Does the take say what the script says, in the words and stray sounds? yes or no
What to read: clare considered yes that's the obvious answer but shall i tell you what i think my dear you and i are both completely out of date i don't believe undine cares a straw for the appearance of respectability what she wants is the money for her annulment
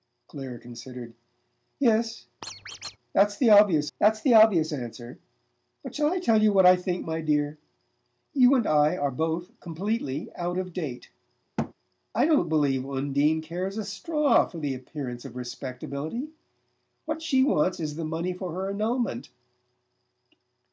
no